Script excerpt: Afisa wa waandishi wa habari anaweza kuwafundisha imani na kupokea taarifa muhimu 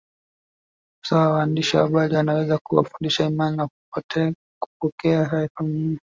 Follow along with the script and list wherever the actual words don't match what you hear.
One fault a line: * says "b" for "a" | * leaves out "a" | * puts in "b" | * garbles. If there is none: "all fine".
all fine